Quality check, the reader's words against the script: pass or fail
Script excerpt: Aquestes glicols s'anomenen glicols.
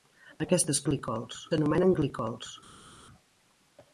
pass